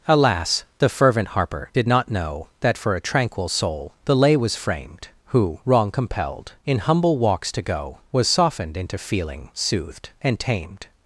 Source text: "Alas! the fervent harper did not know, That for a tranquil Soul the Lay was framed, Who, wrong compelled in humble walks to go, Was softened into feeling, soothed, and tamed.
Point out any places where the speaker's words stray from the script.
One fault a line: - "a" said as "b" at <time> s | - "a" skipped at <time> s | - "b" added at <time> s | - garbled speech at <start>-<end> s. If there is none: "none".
none